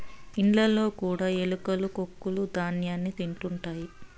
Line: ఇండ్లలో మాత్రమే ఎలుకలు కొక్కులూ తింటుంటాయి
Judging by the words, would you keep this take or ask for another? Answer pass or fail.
fail